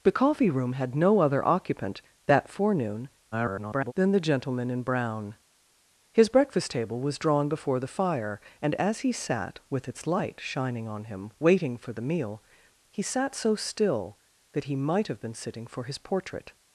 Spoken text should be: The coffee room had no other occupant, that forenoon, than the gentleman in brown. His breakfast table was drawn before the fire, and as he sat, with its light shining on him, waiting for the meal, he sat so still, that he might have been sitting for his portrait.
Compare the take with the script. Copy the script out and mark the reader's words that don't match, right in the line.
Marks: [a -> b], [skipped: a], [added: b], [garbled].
The coffee room had no other occupant, that forenoon, [garbled] than the gentleman in brown. His breakfast table was drawn before the fire, and as he sat, with its light shining on him, waiting for the meal, he sat so still, that he might have been sitting for his portrait.